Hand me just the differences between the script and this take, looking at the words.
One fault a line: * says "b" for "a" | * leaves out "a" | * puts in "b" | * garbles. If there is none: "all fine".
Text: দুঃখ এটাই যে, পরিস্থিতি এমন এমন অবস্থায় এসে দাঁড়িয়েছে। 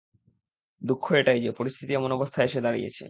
* leaves out "এমন"